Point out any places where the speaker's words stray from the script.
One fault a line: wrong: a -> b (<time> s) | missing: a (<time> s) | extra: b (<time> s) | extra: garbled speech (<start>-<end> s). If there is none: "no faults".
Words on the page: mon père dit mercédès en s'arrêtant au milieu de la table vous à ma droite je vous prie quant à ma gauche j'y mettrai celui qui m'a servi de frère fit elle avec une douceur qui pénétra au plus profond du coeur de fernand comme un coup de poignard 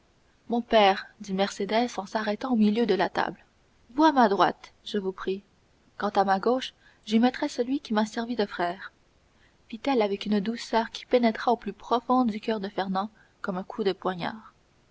no faults